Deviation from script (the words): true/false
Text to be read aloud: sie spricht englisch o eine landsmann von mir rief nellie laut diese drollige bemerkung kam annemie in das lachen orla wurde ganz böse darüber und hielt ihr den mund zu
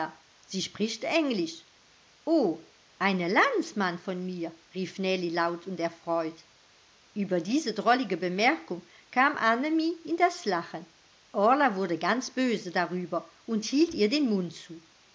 true